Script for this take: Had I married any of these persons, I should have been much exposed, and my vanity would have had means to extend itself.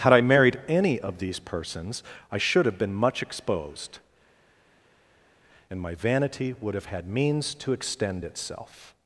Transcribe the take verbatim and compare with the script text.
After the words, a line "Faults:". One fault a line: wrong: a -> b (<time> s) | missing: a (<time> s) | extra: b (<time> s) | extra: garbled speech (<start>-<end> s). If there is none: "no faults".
Had I married any of these persons, I should have been much exposed, and my vanity would have had means to extend itself.
Faults:
no faults